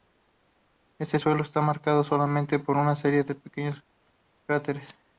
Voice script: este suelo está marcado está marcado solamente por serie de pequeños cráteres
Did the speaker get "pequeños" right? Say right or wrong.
right